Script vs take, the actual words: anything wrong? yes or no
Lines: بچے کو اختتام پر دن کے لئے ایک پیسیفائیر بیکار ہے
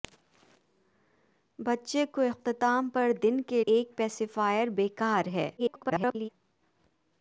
yes